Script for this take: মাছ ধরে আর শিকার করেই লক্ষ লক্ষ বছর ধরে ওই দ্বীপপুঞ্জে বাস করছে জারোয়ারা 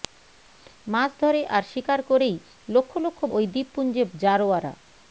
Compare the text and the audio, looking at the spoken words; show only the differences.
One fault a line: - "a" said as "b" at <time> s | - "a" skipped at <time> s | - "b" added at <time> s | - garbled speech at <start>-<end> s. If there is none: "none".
- "বছর ধরে" skipped at 3.2 s
- "বাস করছে" skipped at 4.0 s